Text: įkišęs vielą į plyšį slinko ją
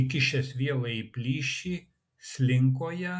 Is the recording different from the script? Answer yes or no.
no